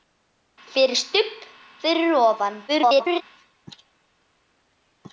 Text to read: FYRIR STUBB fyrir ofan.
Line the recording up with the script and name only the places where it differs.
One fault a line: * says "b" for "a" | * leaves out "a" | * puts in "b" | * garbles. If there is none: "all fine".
* garbles